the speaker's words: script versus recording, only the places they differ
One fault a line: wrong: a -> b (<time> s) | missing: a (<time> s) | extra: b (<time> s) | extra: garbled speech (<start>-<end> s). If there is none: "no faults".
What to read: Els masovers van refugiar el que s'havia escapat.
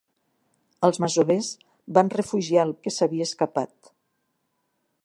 no faults